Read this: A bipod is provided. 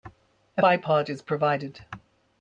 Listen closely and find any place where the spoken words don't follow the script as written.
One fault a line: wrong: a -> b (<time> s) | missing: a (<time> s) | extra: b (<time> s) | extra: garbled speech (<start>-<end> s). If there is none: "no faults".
no faults